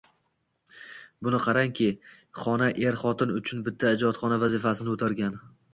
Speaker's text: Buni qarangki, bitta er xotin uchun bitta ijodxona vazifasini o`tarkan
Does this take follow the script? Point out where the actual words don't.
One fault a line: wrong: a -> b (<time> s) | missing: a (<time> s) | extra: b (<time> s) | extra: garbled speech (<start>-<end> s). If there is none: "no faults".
wrong: bitta -> xona (2.4 s)